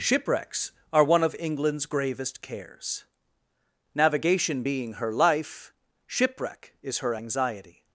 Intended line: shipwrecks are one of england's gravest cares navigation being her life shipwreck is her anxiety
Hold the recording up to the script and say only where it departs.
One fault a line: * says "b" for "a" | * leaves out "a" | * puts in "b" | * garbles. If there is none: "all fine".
all fine